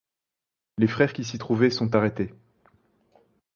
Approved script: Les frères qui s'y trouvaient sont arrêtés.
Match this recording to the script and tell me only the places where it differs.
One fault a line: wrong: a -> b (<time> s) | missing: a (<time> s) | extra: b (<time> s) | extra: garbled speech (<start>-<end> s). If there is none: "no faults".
no faults